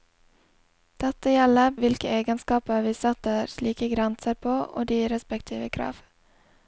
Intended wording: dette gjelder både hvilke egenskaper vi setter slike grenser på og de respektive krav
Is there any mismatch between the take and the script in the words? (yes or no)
yes